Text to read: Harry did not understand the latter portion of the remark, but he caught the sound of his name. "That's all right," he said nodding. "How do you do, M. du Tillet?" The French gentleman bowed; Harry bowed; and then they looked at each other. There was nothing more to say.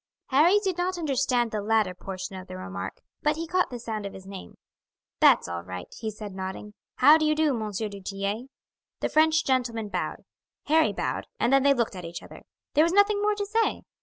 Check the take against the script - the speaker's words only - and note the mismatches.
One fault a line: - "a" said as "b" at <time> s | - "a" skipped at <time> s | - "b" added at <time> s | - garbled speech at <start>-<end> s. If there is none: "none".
none